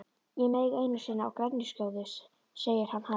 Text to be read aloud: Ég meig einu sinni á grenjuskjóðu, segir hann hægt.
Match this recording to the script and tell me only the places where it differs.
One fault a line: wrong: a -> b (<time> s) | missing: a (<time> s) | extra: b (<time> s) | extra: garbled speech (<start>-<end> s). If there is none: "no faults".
no faults